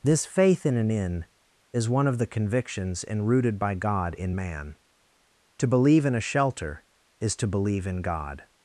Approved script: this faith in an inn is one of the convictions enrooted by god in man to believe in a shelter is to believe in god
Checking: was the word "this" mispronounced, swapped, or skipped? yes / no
no